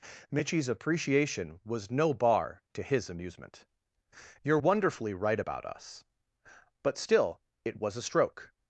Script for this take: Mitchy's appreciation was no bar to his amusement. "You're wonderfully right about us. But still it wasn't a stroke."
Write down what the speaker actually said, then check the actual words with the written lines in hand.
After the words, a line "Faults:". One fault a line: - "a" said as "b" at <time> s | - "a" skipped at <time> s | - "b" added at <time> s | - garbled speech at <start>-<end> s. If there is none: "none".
Mitchy's appreciation was no bar to his amusement. "You're wonderfully right about us. But still it was a stroke."
Faults:
- "wasn't" said as "was" at 7.8 s